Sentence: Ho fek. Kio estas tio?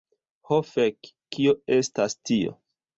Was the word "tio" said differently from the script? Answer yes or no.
no